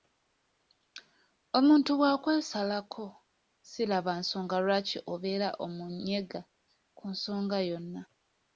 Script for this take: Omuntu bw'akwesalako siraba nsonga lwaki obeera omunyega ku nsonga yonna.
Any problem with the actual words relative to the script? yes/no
no